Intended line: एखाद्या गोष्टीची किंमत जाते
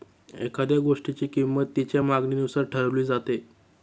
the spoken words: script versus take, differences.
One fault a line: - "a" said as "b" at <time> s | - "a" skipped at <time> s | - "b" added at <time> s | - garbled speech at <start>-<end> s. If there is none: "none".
- "तिच्या मागणीनुसार ठरवली" added at 1.8 s